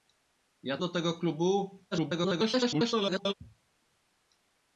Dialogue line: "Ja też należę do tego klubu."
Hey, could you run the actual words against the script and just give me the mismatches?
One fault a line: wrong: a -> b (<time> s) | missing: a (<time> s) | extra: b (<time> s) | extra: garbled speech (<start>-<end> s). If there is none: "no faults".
missing: też należę (0.8 s)
extra: garbled speech (1.9-3.3 s)